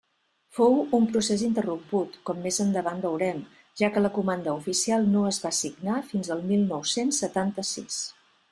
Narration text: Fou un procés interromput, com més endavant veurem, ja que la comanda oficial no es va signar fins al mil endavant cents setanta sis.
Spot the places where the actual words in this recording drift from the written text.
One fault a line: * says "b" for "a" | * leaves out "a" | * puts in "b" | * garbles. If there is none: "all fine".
* says "nou" for "endavant"